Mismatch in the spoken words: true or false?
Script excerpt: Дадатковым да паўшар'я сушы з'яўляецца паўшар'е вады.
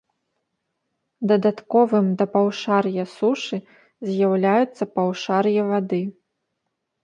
false